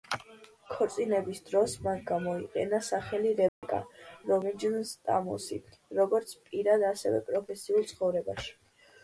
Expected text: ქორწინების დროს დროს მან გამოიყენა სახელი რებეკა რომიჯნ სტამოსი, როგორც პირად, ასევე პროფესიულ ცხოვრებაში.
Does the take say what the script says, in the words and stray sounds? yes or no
no